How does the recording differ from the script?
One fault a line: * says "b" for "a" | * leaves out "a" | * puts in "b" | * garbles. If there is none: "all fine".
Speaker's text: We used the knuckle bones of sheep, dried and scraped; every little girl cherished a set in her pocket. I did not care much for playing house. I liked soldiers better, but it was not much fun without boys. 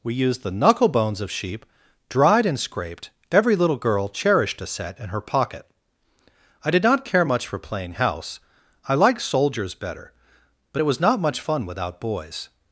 all fine